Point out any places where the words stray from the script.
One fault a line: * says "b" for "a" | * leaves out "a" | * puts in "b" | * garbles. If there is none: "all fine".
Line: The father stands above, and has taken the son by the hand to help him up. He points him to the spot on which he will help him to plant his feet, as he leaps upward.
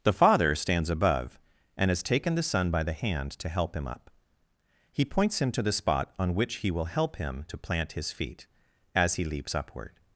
all fine